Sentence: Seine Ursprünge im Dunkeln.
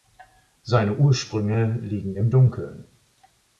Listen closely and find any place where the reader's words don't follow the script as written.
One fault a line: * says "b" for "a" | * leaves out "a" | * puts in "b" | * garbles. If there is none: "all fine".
* puts in "liegen"